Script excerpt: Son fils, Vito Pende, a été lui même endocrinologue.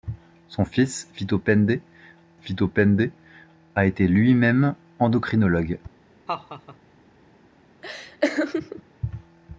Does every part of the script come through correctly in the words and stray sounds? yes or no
no